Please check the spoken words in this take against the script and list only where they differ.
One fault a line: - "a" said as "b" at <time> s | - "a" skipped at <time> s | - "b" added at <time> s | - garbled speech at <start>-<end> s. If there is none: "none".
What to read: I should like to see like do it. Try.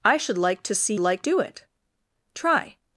none